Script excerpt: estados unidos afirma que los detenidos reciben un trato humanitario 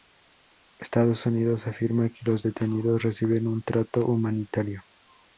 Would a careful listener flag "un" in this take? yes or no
no